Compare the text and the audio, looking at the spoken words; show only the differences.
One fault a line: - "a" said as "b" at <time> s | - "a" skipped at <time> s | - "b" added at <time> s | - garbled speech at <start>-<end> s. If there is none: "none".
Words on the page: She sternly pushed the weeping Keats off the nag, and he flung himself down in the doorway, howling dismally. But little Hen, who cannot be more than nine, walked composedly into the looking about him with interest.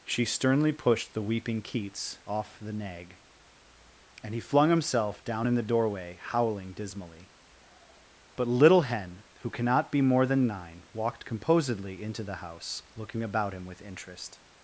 - "house" added at 12.4 s